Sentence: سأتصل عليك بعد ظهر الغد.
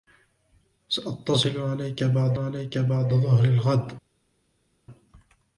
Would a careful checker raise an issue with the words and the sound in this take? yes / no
yes